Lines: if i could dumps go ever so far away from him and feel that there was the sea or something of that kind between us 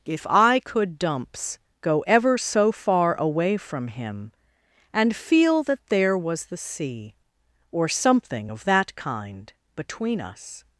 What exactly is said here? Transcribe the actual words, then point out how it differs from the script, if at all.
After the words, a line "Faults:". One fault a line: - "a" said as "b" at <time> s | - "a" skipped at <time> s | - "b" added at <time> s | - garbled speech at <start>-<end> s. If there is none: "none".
if i could dumps go ever so far away from him and feel that there was the sea or something of that kind between us
Faults:
none